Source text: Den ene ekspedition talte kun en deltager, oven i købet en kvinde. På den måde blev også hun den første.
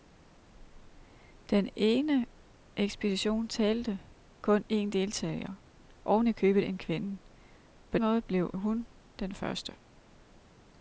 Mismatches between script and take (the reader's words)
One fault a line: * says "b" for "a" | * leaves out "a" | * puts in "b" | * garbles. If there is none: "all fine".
* leaves out "den"
* leaves out "også"